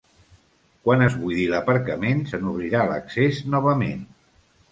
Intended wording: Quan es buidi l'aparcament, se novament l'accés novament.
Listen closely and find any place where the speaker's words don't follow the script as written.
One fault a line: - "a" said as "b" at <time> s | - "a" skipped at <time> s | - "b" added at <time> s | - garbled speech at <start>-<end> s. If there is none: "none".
- "novament" said as "n'obrirà" at 2.4 s